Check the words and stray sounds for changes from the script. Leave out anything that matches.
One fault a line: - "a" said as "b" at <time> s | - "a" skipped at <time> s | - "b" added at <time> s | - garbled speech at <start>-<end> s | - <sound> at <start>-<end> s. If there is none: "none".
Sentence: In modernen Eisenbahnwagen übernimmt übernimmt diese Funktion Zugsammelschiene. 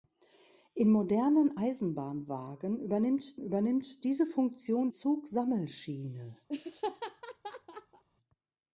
- laugh at 6.5-8.0 s